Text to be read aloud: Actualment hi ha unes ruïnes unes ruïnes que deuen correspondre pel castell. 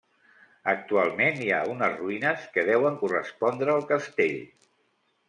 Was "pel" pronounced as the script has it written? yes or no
no